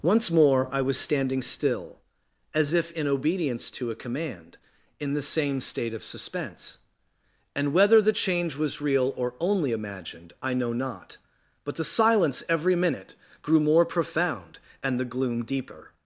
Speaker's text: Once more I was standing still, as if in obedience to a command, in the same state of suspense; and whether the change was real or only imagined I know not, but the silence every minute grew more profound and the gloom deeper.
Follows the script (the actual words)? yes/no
yes